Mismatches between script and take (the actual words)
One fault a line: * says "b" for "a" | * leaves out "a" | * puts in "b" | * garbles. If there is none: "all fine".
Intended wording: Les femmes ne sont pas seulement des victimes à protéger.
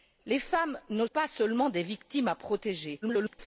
* leaves out "sont"
* garbles